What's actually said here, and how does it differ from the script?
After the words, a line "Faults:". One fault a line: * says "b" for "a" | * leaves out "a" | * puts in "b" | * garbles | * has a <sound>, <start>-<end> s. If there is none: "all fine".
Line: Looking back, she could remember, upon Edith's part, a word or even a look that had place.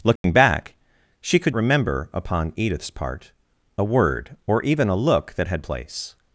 Looking back, she could remember, upon Edith's part, a word or even a look that had place.
Faults:
* has a dropout, 0.2-0.2 s